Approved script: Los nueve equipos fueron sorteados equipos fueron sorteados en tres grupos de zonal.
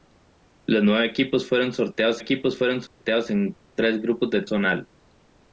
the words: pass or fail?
pass